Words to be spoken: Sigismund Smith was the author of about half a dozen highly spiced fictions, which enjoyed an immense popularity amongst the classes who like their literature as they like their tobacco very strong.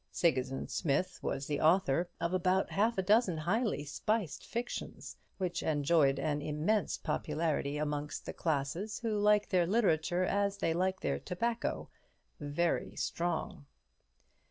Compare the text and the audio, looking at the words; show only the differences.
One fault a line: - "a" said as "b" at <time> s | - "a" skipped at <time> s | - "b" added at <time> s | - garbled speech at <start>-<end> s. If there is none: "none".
none